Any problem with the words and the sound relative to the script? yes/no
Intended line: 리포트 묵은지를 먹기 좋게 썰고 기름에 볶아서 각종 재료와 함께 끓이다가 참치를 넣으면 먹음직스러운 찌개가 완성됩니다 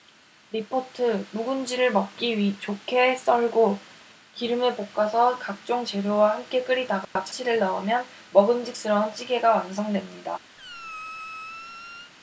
yes